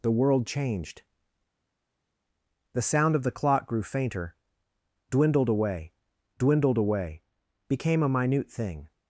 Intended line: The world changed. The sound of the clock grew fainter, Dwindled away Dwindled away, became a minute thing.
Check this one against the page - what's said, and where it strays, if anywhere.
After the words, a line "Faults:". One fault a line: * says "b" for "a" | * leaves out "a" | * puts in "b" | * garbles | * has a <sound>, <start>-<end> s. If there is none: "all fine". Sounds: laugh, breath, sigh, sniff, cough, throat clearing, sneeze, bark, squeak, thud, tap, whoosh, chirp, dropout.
The world changed. The sound of the clock grew fainter, Dwindled away Dwindled away, became a minute thing.
Faults:
all fine